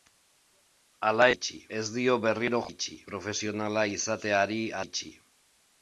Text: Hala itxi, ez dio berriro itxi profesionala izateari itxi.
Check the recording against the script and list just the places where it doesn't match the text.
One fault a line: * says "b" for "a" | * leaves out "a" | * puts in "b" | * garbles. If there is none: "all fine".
all fine